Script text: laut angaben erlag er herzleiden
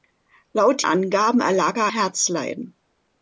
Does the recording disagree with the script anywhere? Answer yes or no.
no